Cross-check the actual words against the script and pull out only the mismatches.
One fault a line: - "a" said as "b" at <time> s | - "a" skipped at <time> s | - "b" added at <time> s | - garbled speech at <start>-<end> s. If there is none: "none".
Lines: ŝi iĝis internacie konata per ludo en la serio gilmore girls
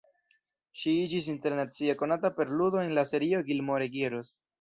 none